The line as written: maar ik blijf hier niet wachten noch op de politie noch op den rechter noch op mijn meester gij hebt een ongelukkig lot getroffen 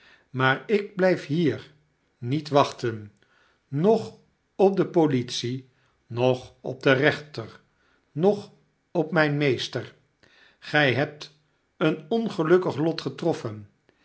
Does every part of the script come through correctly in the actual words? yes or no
yes